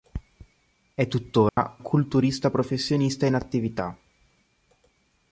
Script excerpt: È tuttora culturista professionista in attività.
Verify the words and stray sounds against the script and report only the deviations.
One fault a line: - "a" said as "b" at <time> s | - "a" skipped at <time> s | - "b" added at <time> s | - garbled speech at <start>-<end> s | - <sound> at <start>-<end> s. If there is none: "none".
- dropout at 1.5-1.6 s